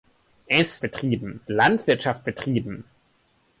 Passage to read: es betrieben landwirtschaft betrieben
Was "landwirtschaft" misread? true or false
false